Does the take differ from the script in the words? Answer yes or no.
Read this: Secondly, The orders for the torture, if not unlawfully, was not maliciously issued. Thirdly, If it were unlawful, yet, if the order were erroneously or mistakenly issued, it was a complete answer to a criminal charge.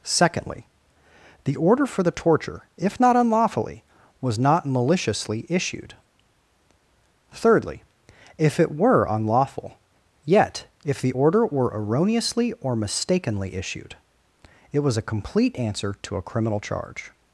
yes